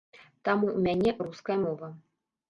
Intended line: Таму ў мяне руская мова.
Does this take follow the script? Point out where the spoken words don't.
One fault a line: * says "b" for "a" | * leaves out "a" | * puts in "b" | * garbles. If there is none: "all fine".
all fine